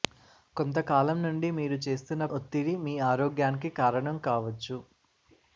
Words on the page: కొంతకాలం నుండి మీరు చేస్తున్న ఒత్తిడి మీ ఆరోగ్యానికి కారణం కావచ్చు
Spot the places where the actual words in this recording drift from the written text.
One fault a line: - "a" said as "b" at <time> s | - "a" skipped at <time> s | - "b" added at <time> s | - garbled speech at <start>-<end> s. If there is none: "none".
none